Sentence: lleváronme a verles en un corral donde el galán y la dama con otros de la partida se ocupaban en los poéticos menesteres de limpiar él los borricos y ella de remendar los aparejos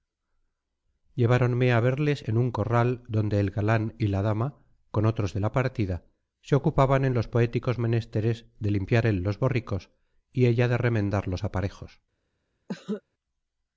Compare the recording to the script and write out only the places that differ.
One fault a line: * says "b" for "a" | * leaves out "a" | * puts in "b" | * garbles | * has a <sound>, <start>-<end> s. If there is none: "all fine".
* has a cough, 12.7-13.0 s